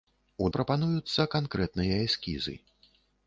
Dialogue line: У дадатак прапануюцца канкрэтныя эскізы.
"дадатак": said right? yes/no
no